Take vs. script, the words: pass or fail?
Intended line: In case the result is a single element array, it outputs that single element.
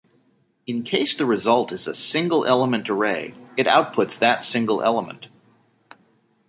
pass